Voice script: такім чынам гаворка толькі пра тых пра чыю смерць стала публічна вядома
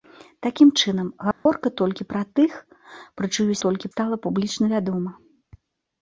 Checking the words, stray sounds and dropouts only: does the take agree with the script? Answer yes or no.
no